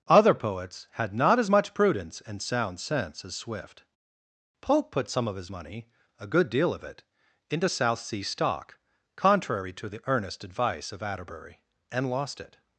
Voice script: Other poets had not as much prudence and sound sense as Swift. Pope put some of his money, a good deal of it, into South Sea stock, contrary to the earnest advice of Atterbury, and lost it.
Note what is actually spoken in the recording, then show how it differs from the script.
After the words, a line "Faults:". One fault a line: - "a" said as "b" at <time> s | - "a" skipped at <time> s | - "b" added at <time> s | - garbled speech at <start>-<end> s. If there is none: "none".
Other poets had not as much prudence and sound sense as Swift. Pope put some of his money, a good deal of it, into South Sea stock, contrary to the earnest advice of Atterbury, and lost it.
Faults:
none